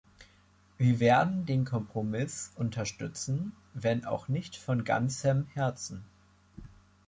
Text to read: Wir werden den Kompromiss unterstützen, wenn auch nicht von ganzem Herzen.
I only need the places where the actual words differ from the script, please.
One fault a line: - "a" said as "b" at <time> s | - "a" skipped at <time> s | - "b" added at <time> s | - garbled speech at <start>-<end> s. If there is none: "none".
none